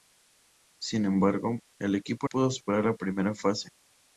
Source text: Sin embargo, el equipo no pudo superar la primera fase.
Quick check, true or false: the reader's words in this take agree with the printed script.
false